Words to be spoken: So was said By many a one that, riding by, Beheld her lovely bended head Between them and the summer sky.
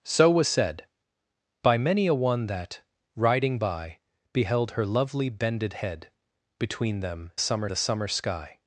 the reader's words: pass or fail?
fail